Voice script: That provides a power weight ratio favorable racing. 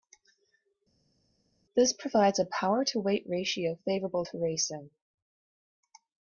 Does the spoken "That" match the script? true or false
false